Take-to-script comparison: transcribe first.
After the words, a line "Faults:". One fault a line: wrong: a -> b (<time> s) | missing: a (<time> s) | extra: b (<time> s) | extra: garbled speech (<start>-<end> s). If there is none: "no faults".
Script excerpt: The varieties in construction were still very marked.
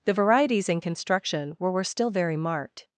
The varieties in construction were were still very marked.
Faults:
extra: were (1.7 s)